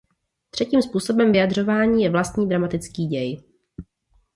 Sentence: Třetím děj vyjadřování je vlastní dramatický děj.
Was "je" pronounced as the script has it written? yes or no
yes